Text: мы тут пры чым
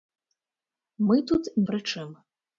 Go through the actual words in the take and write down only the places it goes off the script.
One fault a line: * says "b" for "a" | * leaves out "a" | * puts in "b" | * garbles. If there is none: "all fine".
all fine